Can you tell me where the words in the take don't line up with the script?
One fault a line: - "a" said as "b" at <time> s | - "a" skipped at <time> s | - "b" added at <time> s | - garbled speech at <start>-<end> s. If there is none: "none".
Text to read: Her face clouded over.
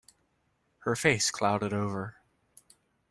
none